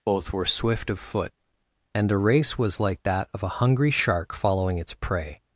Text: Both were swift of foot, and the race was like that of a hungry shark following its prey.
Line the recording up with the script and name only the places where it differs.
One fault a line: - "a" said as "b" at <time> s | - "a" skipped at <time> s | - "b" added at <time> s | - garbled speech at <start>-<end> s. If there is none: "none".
none